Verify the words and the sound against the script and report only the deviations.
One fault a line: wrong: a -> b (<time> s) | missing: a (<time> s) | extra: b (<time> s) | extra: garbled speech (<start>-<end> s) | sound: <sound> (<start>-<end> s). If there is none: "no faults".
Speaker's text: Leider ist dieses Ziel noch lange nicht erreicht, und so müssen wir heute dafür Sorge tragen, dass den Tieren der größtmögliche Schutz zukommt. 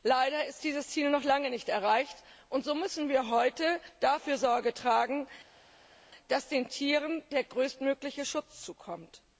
no faults